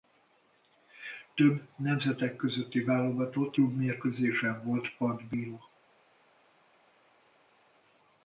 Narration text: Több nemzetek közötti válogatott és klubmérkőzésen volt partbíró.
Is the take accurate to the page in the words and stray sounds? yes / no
no